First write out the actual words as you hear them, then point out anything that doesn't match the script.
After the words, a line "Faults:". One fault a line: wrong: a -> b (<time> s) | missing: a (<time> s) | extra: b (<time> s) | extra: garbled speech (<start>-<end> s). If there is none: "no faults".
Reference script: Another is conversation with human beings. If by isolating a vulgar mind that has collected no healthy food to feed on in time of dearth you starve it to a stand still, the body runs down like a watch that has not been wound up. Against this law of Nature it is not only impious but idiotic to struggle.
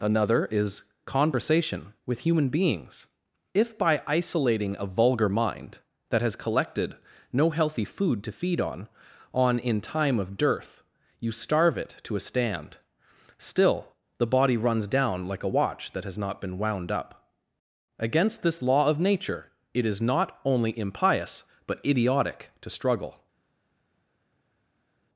Another is conversation with human beings. If by isolating a vulgar mind that has collected no healthy food to feed on on in time of dearth you starve it to a stand still, the body runs down like a watch that has not been wound up. Against this law of Nature it is not only impious but idiotic to struggle.
Faults:
extra: on (9.3 s)